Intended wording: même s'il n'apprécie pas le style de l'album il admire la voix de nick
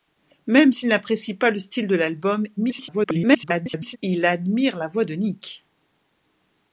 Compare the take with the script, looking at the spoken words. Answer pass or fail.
fail